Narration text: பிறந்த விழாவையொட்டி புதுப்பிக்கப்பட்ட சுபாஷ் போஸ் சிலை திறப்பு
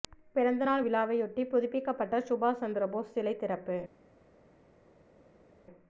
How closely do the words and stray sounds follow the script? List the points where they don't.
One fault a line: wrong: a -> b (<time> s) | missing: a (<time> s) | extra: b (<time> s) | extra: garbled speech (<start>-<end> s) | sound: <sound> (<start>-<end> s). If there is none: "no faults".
extra: நாள் (0.6 s)
extra: சந்திர (2.6 s)